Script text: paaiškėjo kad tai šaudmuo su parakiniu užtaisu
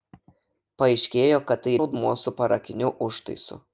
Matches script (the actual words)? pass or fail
pass